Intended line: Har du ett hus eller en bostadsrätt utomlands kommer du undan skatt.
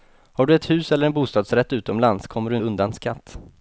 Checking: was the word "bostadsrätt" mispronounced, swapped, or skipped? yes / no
no